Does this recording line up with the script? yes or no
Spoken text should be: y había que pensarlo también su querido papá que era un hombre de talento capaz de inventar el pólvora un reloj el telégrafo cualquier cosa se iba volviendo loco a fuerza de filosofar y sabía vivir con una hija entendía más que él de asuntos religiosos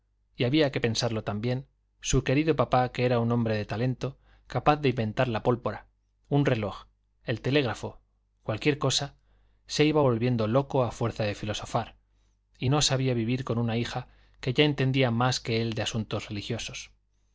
no